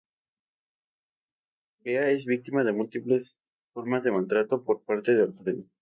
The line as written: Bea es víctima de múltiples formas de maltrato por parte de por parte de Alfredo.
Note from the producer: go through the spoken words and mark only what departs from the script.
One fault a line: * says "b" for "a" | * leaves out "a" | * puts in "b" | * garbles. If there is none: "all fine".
* leaves out "por parte de"